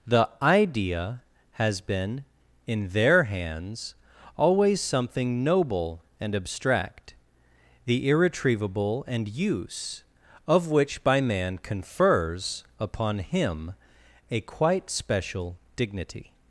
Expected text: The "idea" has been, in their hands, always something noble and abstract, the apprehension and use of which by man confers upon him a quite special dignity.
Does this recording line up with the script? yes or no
no